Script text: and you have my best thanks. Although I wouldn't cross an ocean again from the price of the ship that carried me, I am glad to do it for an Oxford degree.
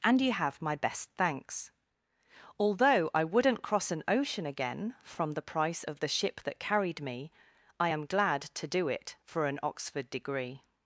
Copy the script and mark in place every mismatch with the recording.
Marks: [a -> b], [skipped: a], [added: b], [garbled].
and you have my best thanks. Although I wouldn't cross an ocean again from the price of the ship that carried me, I am glad to do it for an Oxford degree.